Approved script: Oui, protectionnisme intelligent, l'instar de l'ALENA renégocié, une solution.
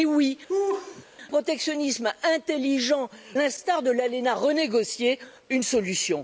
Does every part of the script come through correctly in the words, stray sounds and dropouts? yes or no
no